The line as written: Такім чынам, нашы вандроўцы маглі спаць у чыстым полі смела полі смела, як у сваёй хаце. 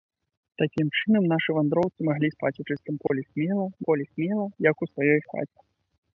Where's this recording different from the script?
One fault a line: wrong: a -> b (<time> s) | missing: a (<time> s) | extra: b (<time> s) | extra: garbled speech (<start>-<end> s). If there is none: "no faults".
no faults